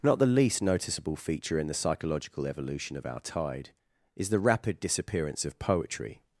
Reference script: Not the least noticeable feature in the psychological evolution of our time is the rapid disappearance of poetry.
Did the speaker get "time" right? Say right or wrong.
wrong